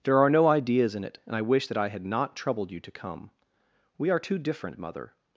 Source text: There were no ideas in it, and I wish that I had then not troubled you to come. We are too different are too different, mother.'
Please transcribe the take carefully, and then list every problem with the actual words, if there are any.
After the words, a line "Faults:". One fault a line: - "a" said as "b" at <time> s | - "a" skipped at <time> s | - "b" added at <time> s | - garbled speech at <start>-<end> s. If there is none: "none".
There are no ideas in it, and I wish that I had not troubled you to come. We are too different, mother.'
Faults:
- "were" said as "are" at 0.2 s
- "then" skipped at 2.1 s
- "are too different" skipped at 4.8 s